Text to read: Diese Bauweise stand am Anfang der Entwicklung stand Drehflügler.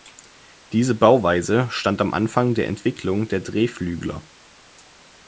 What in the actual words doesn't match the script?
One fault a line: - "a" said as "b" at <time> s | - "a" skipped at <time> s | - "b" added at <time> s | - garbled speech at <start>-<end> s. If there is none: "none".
- "stand" said as "der" at 3.3 s